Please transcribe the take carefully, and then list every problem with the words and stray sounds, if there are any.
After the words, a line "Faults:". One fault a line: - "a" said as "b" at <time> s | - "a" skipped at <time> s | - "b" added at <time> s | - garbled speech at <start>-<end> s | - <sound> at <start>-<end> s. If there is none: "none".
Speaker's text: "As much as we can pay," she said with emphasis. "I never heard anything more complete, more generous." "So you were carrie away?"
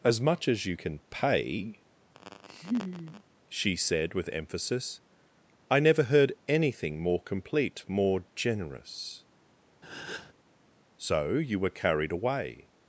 "As much as you can pay," she said with emphasis. "I never heard anything more complete, more generous." "So you were carried away?"
Faults:
- "we" said as "you" at 0.7 s
- laugh at 2.1-3.2 s
- breath at 9.8-10.3 s
- "carrie" said as "carried" at 11.7 s